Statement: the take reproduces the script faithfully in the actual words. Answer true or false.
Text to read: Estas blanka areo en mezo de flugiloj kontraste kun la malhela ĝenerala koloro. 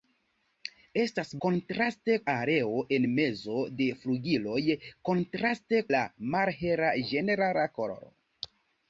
false